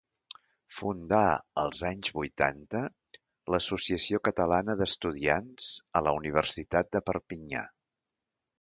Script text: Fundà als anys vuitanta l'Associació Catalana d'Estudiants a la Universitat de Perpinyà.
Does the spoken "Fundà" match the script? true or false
true